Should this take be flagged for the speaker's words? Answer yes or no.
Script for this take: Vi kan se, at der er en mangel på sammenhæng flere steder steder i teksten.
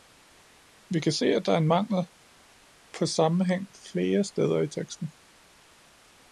yes